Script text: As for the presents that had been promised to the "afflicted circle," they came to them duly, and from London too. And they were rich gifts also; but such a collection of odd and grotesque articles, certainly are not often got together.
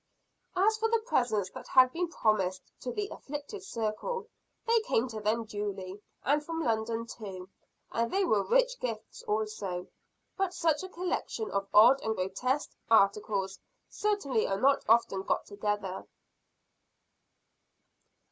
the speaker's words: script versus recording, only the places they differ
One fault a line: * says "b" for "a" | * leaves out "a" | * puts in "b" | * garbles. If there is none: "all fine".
all fine